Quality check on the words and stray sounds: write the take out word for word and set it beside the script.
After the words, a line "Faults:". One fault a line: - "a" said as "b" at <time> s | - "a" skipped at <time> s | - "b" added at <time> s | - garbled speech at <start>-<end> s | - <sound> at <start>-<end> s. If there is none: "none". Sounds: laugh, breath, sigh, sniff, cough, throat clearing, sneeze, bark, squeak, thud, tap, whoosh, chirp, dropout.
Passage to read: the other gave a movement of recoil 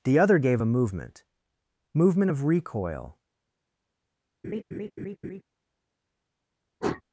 the other gave a movement movement of recoil
Faults:
- "movement" added at 1.9 s
- laugh at 4.4-5.4 s
- sniff at 6.8-7.0 s